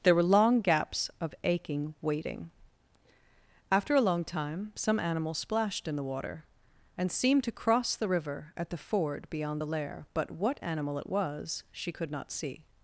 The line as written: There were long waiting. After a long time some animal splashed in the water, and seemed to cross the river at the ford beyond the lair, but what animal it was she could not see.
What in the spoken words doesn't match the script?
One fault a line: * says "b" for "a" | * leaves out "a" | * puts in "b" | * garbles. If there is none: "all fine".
* puts in "gaps of aching"